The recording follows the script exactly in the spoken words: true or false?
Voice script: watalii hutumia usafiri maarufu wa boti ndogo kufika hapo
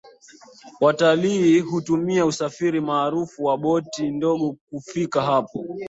true